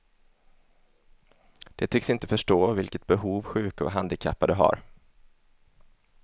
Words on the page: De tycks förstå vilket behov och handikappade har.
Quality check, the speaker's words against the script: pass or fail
fail